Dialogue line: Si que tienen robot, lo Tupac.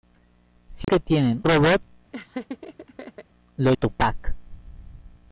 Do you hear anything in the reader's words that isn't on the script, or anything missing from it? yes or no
no